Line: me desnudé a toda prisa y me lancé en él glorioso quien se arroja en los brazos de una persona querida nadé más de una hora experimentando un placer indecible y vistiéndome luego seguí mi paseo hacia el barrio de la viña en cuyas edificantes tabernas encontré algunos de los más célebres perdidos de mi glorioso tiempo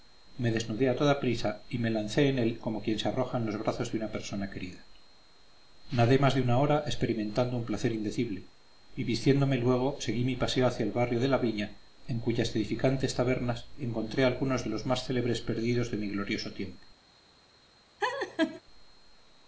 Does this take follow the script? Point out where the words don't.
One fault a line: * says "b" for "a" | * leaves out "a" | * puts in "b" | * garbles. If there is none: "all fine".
* says "como" for "glorioso"